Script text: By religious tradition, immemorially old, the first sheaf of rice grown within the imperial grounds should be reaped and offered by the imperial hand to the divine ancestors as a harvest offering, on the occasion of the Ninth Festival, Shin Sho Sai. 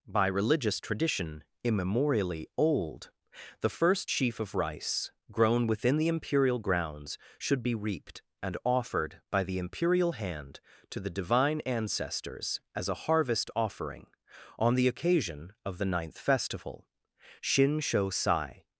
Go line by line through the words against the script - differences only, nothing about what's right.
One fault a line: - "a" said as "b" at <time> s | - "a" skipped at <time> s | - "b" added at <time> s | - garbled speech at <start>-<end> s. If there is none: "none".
none